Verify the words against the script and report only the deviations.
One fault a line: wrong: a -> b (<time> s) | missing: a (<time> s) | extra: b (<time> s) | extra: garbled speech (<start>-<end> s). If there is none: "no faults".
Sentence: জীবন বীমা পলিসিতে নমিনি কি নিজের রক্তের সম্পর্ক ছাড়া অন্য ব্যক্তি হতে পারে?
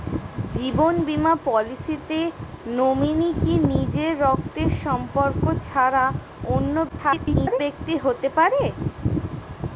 extra: garbled speech (6.9-7.6 s)